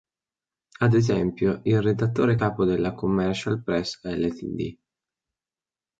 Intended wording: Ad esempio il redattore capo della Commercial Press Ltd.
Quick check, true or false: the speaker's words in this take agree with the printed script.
true